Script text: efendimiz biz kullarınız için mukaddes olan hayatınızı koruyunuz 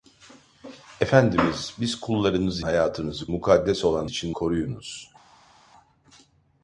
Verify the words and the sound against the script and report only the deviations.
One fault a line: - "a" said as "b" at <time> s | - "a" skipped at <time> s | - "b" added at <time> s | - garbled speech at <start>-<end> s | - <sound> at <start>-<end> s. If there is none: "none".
- "için" said as "hayatınızı" at 2.6 s
- "hayatınızı" said as "için" at 4.1 s